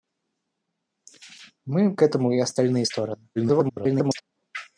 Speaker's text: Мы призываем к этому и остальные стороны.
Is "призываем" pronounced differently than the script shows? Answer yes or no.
yes